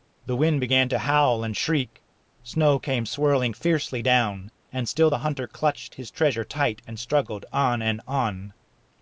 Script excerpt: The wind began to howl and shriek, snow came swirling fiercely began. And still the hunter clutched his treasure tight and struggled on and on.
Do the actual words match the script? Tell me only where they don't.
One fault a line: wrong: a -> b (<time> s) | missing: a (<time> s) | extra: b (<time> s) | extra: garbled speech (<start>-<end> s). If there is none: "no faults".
wrong: began -> down (4.0 s)